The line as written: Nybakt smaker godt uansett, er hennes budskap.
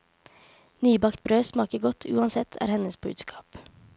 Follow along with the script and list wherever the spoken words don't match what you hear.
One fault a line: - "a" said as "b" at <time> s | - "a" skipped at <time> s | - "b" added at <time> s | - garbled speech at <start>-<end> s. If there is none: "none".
- "brød" added at 1.2 s